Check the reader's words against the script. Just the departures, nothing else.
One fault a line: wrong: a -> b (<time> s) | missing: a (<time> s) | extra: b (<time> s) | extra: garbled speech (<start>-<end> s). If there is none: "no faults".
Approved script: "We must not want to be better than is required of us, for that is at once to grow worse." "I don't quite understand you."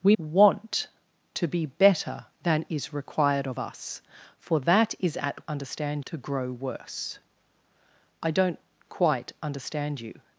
missing: must not (0.1 s)
wrong: once -> understand (5.5 s)